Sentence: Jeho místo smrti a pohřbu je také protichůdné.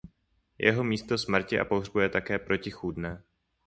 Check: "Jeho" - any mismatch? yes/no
no